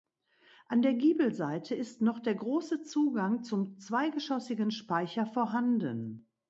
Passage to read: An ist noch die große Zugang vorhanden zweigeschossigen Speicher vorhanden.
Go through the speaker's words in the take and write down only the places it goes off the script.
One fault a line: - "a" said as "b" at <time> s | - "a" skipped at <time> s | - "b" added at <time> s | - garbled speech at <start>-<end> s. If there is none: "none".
- "der Giebelseite" added at 0.8 s
- "die" said as "der" at 2.2 s
- "vorhanden" said as "zum" at 3.4 s